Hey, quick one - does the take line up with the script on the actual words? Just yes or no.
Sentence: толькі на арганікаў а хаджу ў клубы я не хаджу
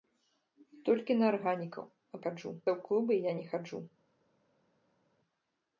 yes